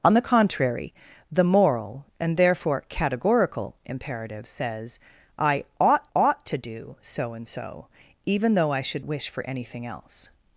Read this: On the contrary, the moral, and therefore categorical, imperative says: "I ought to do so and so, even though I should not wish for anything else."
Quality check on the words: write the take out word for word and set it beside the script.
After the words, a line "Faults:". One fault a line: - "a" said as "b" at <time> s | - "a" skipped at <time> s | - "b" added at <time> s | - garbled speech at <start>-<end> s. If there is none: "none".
On the contrary, the moral, and therefore categorical, imperative says: "I ought ought to do so and so, even though I should wish for anything else."
Faults:
- "ought" added at 6.1 s
- "not" skipped at 9.1 s